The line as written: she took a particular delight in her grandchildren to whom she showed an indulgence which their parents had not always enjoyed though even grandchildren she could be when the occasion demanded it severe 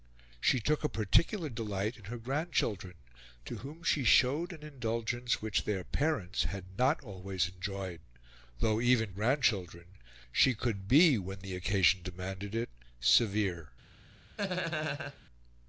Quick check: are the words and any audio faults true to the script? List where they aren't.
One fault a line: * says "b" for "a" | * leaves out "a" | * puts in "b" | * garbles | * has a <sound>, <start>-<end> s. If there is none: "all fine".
* has a laugh, 14.4-15.2 s